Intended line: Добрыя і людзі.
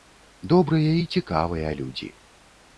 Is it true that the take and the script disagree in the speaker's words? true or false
true